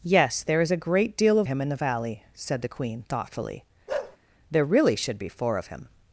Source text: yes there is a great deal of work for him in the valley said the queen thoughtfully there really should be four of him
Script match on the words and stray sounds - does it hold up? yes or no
no